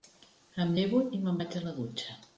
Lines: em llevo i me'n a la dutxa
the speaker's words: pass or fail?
fail